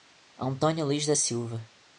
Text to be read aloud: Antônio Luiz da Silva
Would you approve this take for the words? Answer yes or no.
yes